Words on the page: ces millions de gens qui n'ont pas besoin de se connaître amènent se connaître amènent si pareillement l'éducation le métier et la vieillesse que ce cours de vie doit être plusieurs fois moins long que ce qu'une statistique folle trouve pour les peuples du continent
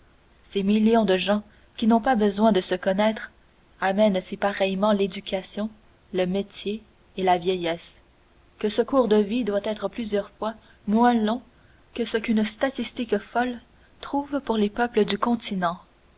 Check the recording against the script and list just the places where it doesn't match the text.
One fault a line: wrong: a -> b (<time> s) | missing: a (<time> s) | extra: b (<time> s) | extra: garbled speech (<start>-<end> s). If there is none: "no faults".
missing: se connaître amènent (4.2 s)